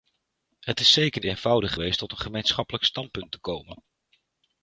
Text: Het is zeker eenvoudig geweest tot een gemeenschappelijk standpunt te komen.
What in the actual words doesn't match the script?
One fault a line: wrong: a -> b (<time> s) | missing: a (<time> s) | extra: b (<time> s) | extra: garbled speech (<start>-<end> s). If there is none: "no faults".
no faults